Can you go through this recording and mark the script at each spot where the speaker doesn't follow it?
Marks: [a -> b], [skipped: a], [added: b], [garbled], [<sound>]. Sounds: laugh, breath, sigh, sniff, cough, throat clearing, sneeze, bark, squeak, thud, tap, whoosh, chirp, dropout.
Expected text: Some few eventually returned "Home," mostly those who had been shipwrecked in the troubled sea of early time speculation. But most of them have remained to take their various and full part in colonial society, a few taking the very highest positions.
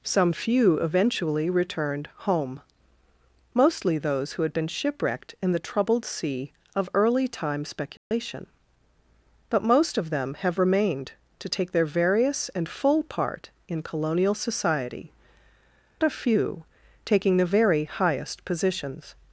Some few eventually returned "Home," mostly those who had been shipwrecked in the troubled sea of early time speculation. [dropout] But most of them have remained to take their various and full part in colonial society, a few taking the very highest positions.